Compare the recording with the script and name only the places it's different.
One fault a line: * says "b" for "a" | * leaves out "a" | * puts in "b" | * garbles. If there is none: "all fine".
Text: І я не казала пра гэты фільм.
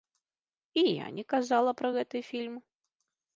all fine